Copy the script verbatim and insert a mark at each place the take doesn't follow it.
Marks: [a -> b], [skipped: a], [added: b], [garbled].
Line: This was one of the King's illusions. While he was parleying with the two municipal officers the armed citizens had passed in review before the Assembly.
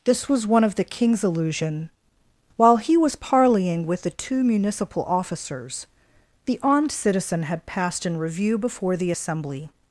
This was one of the King's [illusions. -> illusion] While he was parleying with the two municipal officers the armed [citizens -> citizen] had passed in review before the Assembly.